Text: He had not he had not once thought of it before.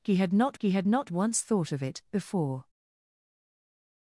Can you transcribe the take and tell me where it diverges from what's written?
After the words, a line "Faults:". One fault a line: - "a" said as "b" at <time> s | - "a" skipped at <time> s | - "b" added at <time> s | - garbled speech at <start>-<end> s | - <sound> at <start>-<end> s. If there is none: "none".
He had not he had not once thought of it before.
Faults:
none